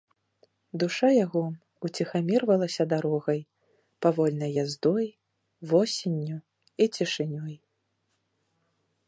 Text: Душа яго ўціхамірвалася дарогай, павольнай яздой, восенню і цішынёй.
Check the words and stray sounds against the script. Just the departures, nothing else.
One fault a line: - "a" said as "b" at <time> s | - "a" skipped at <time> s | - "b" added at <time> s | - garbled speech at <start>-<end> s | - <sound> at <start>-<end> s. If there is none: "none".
none